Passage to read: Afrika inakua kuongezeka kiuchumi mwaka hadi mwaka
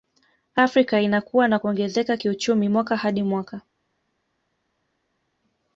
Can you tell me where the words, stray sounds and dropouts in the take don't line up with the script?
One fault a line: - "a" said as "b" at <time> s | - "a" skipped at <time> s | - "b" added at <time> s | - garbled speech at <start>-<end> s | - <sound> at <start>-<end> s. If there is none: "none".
- "na" added at 1.5 s